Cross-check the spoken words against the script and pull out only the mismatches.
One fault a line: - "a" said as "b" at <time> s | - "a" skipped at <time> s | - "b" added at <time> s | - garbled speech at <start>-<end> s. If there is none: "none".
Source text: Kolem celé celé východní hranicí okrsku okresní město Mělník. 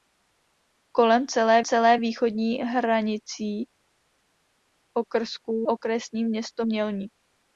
none